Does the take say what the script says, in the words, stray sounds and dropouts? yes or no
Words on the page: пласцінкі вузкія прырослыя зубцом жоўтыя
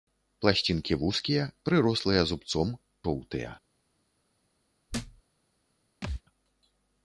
no